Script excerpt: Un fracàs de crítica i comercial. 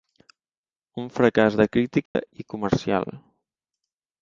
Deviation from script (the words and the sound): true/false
true